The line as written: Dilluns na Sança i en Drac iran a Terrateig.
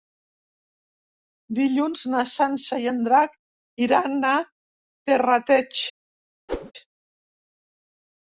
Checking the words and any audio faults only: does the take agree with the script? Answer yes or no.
no